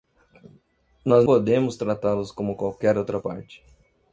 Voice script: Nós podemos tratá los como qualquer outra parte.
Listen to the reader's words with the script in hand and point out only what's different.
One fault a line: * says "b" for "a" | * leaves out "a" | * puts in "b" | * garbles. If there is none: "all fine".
all fine